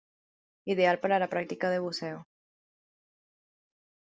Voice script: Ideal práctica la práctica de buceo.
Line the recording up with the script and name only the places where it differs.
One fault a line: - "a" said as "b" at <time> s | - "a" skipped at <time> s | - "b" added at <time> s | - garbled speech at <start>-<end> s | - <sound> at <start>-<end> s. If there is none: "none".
- "práctica" said as "para" at 1.0 s